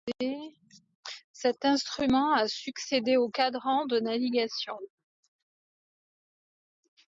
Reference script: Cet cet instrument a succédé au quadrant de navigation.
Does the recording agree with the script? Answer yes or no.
no